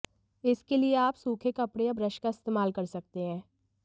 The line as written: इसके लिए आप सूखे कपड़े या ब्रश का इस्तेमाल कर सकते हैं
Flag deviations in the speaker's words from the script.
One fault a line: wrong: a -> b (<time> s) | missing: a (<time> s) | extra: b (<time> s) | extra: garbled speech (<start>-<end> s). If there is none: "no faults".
no faults